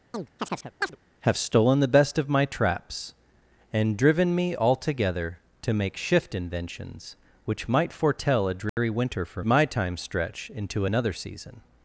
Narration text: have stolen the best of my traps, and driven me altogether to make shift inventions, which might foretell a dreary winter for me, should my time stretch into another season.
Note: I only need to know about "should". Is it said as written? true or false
false